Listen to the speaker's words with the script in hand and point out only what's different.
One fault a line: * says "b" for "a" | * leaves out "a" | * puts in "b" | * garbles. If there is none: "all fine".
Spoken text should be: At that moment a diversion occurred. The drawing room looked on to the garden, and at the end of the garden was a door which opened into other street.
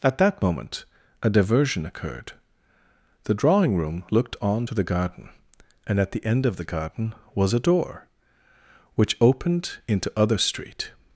all fine